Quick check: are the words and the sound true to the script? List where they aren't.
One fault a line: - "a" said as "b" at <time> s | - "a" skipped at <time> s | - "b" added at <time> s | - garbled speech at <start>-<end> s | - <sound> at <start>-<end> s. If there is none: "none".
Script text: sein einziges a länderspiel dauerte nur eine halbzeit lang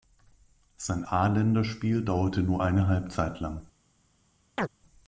- "einziges" skipped at 1.0 s
- chirp at 4.6-4.7 s